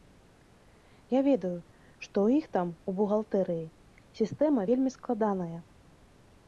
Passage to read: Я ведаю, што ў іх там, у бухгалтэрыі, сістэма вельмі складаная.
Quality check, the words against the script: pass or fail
pass